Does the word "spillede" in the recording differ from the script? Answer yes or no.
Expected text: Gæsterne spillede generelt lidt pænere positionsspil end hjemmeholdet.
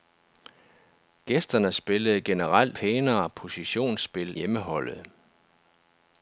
no